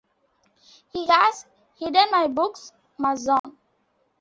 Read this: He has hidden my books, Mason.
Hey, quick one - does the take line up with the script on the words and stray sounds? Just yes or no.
no